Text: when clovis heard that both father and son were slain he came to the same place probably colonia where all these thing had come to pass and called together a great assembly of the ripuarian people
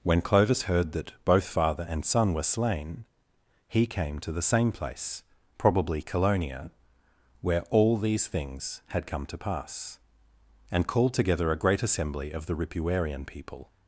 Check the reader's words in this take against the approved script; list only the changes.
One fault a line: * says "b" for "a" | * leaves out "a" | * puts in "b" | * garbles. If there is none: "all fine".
* says "things" for "thing"